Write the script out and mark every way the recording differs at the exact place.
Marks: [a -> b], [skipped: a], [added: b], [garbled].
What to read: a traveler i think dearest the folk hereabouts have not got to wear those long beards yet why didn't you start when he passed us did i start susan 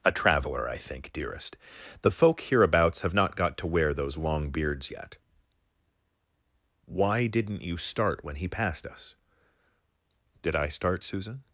a traveler i think dearest the folk hereabouts have not got to wear those long beards yet why didn't you start when he passed us did i start susan